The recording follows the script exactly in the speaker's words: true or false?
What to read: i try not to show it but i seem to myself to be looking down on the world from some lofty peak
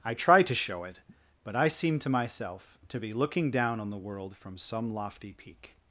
false